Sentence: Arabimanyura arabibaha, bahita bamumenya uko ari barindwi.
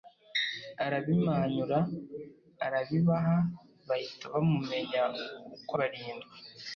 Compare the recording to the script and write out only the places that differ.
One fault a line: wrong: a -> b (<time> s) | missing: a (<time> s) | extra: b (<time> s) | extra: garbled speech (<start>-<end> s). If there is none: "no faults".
missing: ari (5.7 s)